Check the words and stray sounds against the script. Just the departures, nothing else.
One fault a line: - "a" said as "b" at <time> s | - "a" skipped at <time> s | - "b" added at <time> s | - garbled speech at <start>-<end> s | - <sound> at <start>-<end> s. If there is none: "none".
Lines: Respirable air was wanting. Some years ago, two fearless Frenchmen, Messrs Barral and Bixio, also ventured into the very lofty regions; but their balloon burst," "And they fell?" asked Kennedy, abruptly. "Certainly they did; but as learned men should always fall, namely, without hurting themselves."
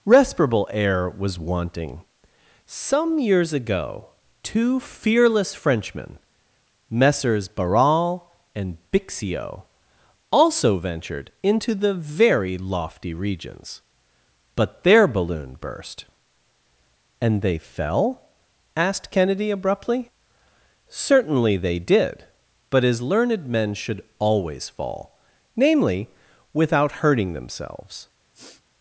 - sniff at 28.3-28.6 s